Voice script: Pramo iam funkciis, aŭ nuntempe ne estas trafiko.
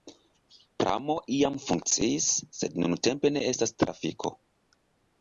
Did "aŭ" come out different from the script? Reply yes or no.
yes